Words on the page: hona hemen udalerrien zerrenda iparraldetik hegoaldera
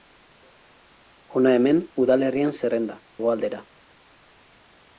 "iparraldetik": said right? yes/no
no